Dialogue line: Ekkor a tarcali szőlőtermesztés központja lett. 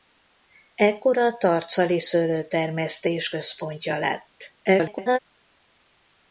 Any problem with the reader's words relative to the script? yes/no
yes